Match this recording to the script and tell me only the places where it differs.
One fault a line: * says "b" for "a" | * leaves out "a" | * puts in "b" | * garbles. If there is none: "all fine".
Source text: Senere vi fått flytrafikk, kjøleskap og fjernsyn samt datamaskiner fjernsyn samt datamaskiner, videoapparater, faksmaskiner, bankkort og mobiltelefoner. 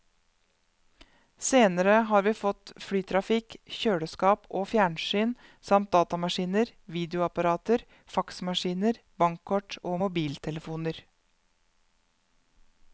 * puts in "har"
* leaves out "fjernsyn samt datamaskiner"